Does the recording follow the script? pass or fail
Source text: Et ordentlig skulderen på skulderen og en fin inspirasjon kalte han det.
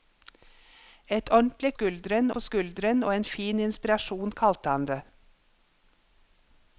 pass